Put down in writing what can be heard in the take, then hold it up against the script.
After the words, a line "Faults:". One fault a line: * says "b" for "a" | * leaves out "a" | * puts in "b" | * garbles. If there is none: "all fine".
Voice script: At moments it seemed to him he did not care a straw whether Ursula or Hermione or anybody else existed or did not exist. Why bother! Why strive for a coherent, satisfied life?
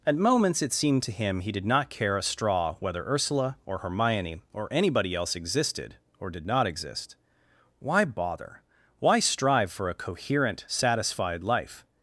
At moments it seemed to him he did not care a straw whether Ursula or Hermione or anybody else existed or did not exist. Why bother! Why strive for a coherent, satisfied life?
Faults:
all fine